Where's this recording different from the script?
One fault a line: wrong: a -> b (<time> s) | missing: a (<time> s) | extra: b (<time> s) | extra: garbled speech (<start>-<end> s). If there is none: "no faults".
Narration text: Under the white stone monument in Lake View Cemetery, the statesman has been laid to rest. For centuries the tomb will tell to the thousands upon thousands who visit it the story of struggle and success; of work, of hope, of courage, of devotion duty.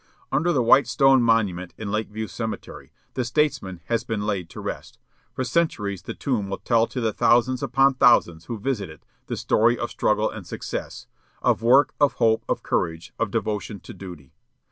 extra: to (13.8 s)